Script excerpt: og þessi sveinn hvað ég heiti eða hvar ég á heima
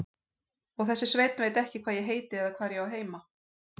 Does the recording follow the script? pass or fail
fail